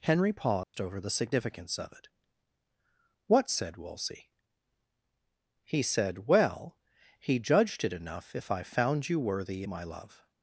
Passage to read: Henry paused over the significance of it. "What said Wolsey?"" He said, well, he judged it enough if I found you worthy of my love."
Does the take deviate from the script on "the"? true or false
false